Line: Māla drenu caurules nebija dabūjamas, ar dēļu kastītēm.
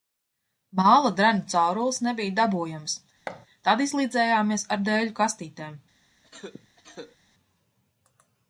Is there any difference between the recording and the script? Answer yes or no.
yes